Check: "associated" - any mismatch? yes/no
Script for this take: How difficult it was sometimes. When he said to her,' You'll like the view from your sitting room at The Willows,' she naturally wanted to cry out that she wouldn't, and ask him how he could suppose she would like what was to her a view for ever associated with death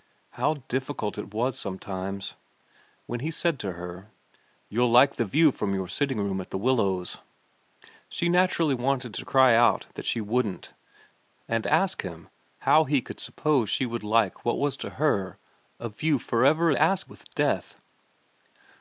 yes